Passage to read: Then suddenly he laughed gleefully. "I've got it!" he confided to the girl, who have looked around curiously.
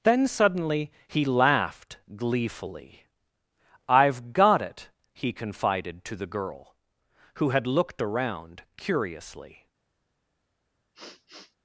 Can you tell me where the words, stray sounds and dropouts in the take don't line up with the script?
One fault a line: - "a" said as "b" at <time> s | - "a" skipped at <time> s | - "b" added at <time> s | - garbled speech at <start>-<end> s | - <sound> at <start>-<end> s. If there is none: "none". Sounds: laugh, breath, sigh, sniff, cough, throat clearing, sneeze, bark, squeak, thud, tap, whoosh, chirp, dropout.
- "have" said as "had" at 7.5 s
- sniff at 10.9-11.6 s